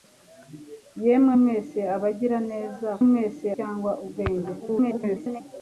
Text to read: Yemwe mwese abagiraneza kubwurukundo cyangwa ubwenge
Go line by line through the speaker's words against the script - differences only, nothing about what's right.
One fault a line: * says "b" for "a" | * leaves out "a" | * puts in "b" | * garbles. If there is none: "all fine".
* says "mwese" for "kubwurukundo"
* garbles